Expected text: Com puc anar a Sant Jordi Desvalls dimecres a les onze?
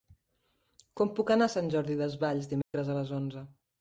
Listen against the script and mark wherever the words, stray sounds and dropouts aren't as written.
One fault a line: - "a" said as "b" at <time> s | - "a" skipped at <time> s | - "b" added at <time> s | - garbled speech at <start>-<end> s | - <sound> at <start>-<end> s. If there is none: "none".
- dropout at 2.6-2.7 s